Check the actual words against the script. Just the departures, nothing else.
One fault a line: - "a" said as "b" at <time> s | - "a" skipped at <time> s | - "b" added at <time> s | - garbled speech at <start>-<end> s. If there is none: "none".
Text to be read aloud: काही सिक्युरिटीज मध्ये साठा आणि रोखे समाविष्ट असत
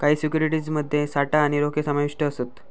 none